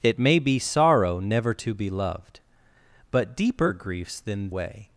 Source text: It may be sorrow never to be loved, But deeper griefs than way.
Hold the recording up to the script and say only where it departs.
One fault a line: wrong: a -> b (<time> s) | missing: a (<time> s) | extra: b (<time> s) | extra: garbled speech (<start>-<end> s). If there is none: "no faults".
no faults